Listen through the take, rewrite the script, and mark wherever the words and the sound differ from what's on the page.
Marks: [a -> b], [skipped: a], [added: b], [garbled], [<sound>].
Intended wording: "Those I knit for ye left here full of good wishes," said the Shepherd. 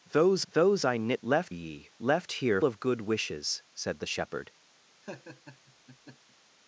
"Those [added: those] I knit [for -> left] ye left here [skipped: full] of good wishes," said the Shepherd. [laugh]